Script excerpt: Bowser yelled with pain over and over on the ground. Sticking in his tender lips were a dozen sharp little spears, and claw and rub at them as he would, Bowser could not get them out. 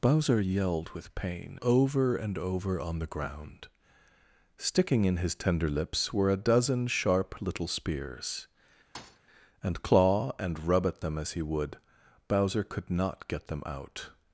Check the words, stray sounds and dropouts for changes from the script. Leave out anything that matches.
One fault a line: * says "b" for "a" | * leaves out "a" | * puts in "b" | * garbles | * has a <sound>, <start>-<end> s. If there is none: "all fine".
* has a thud, 8.9-9.2 s